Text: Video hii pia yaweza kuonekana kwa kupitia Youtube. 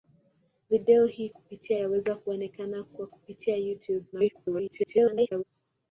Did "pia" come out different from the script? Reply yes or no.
yes